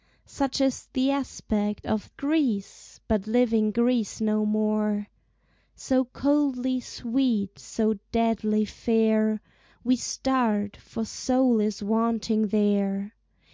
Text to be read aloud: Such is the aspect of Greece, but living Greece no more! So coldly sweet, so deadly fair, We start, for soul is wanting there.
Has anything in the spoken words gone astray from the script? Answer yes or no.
no